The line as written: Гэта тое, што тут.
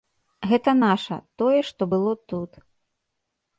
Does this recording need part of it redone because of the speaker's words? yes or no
yes